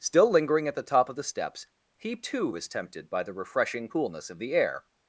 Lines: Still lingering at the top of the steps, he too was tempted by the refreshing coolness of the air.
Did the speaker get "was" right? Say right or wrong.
right